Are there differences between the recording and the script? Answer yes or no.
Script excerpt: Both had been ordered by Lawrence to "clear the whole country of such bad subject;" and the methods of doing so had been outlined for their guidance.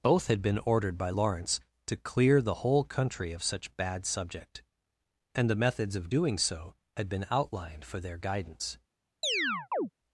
no